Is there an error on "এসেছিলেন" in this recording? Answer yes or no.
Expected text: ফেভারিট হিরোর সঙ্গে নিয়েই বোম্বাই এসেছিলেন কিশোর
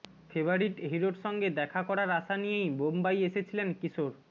no